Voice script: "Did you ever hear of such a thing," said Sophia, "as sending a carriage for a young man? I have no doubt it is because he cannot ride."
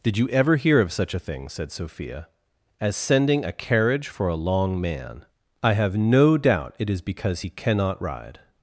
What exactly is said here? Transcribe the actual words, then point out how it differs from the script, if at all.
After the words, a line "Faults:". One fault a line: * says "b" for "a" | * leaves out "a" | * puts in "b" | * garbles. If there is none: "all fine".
"Did you ever hear of such a thing," said Sophia, "as sending a carriage for a long man? I have no doubt it is because he cannot ride."
Faults:
* says "long" for "young"